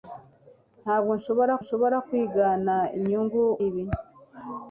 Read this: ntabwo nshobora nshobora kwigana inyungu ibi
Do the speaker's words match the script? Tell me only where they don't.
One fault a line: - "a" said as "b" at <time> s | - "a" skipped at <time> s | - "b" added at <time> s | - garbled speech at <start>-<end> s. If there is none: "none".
none